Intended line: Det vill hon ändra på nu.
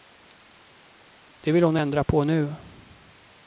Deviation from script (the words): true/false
false